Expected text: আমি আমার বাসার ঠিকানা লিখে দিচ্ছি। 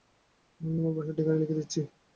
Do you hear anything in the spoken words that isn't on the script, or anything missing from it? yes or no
no